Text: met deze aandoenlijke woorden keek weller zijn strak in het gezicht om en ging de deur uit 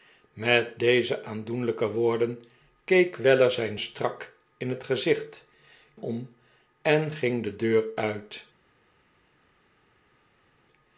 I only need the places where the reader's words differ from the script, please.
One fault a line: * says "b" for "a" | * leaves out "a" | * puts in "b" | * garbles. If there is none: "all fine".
all fine